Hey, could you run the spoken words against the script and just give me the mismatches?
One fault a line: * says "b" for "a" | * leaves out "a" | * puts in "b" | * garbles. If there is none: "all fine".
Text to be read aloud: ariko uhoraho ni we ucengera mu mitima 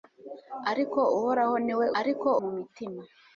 * says "ariko" for "ucengera"